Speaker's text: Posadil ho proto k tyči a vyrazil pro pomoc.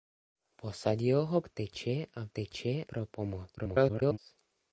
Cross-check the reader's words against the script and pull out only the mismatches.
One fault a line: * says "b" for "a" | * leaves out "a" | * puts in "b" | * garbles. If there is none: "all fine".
* leaves out "proto"
* says "tyči" for "vyrazil"
* garbles